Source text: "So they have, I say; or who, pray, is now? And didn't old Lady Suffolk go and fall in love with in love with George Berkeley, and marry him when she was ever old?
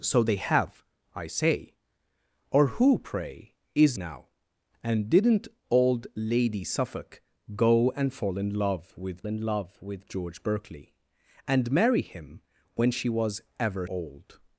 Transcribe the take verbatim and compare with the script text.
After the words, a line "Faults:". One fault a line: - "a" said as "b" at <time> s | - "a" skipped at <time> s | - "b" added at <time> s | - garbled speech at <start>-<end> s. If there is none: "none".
"So they have, I say; or who, pray, is now? And didn't old Lady Suffolk go and fall in love with in love with George Berkeley, and marry him when she was ever old?
Faults:
none